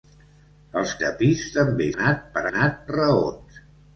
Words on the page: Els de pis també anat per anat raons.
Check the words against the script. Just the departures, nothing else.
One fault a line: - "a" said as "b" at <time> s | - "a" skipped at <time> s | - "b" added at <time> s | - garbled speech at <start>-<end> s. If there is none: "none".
none